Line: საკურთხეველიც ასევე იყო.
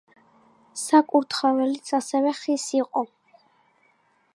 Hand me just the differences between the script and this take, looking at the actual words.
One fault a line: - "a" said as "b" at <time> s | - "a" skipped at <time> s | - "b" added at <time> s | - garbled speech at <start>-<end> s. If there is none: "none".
- "ხის" added at 2.4 s